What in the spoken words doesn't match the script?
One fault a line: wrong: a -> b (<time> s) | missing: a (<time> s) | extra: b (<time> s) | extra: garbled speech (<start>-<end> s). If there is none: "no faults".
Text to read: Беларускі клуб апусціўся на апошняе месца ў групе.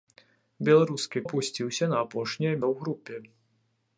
missing: клуб (1.2 s)
missing: месца (2.5 s)